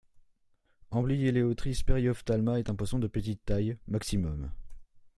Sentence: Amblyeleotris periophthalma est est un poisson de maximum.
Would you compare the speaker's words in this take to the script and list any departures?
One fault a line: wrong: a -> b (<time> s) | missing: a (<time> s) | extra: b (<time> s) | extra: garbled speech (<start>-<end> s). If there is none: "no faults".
missing: est (2.7 s)
extra: petite taille (3.1 s)